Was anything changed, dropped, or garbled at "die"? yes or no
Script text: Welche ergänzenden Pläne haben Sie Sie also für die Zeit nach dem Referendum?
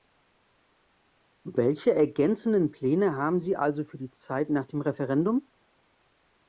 no